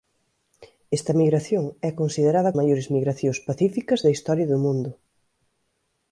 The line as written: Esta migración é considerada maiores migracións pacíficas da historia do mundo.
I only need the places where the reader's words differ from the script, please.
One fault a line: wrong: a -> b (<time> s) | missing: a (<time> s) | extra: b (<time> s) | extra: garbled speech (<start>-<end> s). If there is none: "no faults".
no faults